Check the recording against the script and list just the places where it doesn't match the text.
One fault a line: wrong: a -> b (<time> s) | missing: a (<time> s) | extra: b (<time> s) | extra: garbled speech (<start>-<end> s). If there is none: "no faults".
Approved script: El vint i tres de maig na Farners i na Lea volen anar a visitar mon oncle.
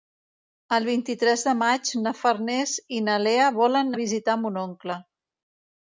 missing: anar (3.9 s)